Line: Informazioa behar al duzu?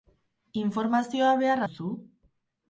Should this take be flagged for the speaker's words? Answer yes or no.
yes